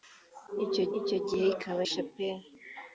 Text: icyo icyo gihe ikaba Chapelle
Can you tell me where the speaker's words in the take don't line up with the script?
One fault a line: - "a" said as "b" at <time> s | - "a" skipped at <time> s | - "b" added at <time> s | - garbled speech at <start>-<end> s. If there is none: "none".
none